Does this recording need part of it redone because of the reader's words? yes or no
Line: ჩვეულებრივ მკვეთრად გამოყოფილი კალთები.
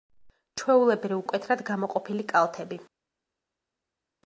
no